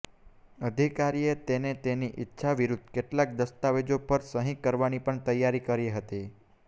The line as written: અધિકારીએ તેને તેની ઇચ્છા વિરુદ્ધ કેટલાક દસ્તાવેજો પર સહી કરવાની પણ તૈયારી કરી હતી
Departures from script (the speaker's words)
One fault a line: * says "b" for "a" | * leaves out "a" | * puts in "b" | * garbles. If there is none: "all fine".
all fine